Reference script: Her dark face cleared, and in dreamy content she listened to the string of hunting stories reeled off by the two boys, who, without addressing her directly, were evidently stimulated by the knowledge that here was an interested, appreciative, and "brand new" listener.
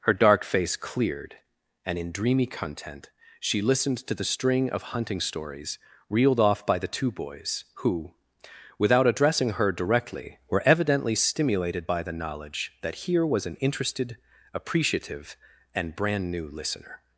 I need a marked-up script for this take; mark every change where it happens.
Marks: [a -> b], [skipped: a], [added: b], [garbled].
Her dark face cleared, and in dreamy content she listened to the string of hunting stories reeled off by the two boys, who, without addressing her directly, were evidently stimulated by the knowledge that here was an interested, appreciative, and "brand new" listener.